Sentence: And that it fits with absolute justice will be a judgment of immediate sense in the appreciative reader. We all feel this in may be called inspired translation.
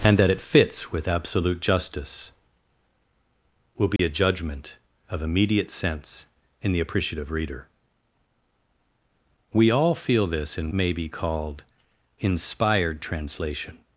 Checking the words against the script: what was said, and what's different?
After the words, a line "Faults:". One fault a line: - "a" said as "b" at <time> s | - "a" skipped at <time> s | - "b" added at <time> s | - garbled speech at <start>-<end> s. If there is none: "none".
And that it fits with absolute justice will be a judgment of immediate sense in the appreciative reader. We all feel this in may be called inspired translation.
Faults:
none